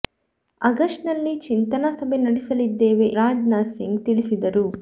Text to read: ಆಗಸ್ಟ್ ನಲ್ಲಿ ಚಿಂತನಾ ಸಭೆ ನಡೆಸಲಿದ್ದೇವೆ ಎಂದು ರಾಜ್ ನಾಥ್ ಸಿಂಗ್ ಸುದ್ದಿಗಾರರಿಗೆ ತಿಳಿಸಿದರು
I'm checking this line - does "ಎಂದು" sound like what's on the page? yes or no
no